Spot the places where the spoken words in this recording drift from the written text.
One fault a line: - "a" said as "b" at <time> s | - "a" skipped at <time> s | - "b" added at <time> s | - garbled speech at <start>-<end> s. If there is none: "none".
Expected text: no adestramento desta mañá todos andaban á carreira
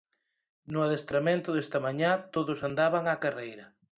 none